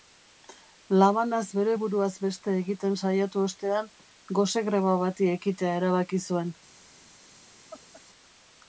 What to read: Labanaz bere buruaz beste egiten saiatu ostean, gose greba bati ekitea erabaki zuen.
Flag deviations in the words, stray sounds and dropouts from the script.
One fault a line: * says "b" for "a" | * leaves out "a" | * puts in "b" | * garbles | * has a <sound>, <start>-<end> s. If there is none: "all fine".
* has a laugh, 7.7-8.0 s